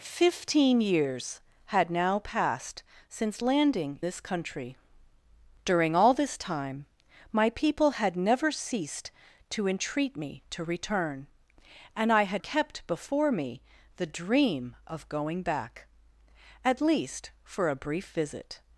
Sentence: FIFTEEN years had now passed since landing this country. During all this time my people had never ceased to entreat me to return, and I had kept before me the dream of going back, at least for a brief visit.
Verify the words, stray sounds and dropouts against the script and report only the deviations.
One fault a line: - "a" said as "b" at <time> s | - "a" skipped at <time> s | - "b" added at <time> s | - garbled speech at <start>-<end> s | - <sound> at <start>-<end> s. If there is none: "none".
none